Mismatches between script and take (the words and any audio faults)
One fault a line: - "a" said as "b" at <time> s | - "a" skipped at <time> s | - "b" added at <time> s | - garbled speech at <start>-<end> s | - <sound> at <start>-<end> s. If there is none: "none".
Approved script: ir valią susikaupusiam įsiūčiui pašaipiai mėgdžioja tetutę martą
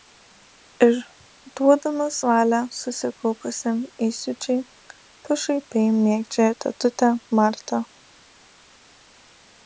- "duodamas" added at 1.6 s